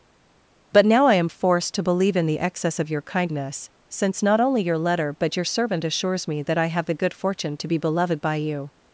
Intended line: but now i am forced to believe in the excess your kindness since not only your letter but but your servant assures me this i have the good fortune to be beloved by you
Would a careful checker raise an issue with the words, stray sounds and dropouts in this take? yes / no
yes